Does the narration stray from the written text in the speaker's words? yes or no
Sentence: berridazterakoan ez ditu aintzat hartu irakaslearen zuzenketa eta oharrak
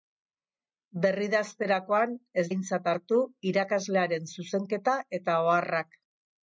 yes